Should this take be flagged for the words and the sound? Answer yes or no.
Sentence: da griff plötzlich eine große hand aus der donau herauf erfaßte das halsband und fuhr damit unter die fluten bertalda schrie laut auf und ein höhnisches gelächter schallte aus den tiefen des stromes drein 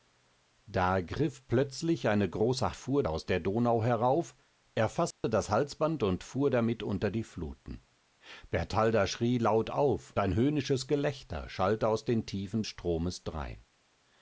yes